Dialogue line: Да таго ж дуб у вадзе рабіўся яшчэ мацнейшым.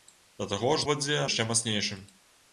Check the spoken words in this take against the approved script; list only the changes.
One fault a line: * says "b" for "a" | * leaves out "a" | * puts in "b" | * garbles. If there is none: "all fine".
* leaves out "дуб"
* leaves out "рабіўся"